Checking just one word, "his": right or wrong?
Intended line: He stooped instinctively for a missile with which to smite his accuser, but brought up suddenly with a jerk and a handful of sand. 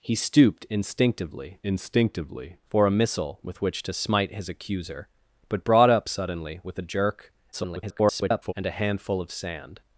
right